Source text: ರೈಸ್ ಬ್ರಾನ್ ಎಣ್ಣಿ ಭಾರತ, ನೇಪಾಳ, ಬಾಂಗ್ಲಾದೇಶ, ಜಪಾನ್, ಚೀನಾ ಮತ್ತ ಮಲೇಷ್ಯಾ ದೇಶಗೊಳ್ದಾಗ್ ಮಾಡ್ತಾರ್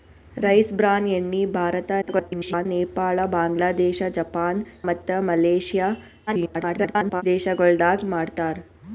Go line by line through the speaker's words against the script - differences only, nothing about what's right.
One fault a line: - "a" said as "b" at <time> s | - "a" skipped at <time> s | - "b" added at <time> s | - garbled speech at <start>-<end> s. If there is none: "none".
- garbled speech at 2.0-2.7 s
- "ಚೀನಾ" skipped at 4.6 s
- garbled speech at 6.3-7.2 s